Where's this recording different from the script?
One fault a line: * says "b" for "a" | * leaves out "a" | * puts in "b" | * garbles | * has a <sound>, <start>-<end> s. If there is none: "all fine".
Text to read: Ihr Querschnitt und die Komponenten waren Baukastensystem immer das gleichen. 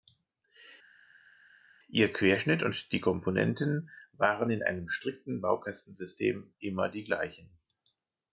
* puts in "in einem strikten"
* says "die" for "das"